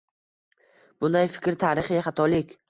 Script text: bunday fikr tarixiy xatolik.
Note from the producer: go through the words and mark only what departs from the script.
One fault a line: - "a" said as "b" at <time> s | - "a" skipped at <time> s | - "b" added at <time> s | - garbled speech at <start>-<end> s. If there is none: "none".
none